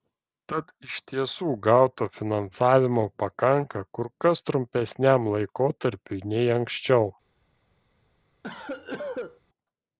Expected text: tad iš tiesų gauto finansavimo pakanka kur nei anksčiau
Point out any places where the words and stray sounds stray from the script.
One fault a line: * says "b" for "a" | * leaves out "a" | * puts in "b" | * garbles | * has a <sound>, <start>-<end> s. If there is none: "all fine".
* puts in "kas trumpesniam laikotarpiui"
* has a cough, 8.4-9.4 s